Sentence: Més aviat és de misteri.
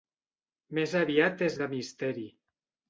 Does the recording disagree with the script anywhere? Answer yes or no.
no